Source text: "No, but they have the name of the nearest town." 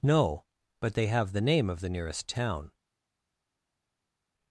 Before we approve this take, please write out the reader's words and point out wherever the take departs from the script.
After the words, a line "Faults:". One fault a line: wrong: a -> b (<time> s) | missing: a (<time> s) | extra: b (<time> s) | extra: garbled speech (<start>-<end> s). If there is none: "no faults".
"No, but they have the name of the nearest town."
Faults:
no faults